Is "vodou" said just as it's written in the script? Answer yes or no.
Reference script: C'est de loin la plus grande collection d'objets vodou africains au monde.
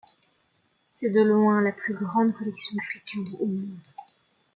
no